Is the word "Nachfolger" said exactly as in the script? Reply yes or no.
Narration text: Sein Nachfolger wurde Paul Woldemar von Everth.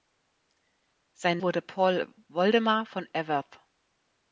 no